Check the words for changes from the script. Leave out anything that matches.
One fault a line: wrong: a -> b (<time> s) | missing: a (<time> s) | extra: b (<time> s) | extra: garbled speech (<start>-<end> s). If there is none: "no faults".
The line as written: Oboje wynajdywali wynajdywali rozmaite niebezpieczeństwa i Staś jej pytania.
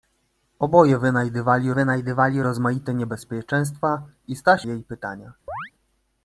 no faults